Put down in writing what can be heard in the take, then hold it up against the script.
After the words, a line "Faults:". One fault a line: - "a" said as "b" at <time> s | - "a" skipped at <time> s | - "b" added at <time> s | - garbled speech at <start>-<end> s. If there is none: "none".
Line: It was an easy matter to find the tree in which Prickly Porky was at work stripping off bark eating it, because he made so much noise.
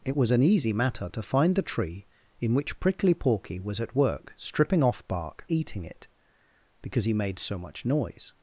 It was an easy matter to find the tree in which Prickly Porky was at work stripping off bark eating it, because he made so much noise.
Faults:
none